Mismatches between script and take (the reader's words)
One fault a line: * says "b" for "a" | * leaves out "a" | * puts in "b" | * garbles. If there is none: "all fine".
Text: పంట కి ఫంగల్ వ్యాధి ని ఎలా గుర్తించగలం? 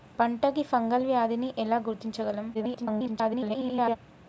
* garbles